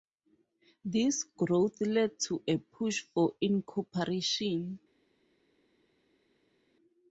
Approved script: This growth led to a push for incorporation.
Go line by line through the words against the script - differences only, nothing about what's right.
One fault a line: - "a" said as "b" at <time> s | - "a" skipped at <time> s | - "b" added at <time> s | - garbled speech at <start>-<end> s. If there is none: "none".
none